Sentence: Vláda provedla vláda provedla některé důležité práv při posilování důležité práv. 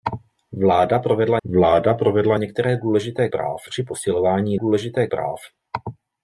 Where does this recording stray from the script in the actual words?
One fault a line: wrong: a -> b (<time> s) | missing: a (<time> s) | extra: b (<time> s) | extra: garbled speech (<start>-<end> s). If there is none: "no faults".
no faults